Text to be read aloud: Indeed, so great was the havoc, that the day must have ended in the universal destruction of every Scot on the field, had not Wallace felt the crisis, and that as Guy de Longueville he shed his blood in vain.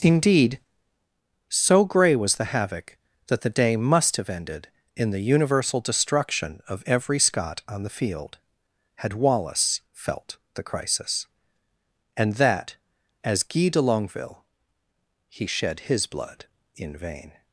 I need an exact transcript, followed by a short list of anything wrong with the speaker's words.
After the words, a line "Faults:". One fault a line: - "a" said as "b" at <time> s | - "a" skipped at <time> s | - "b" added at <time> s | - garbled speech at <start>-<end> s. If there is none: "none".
Indeed, so grey was the havoc, that the day must have ended in the universal destruction of every Scot on the field, had Wallace felt the crisis, and that as Guy de Longueville he shed his blood in vain.
Faults:
- "great" said as "grey" at 1.9 s
- "not" skipped at 9.1 s